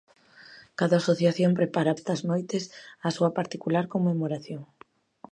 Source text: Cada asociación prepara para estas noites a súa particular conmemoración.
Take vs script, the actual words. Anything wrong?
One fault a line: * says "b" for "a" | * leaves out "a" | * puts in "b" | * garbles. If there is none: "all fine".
* leaves out "para"